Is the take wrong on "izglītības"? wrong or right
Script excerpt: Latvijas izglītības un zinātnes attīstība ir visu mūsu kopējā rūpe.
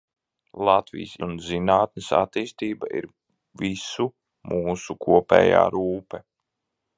wrong